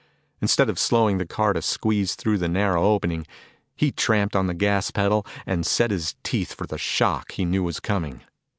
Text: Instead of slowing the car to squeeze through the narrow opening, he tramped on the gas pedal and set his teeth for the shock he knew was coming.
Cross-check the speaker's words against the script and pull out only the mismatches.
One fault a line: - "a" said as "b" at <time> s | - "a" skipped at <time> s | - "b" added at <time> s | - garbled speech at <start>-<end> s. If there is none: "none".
none